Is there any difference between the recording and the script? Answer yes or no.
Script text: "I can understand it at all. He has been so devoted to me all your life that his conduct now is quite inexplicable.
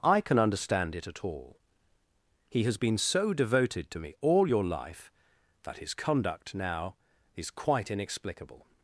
no